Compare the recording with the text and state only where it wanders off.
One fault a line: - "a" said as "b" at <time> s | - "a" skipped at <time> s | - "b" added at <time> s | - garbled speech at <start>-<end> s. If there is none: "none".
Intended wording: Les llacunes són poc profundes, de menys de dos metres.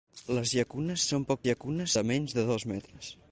- "profundes" said as "llacunes" at 1.5 s